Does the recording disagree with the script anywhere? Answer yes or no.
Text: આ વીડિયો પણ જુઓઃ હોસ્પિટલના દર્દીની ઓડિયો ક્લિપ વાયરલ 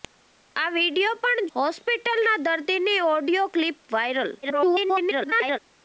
yes